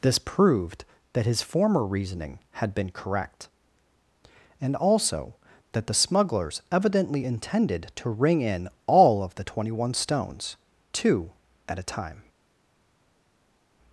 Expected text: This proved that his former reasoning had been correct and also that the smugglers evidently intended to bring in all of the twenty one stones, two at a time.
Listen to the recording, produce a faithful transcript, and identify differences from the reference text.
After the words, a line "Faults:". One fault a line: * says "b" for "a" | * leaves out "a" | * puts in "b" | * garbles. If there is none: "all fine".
This proved that his former reasoning had been correct and also that the smugglers evidently intended to ring in all of the twenty one stones, two at a time.
Faults:
* says "ring" for "bring"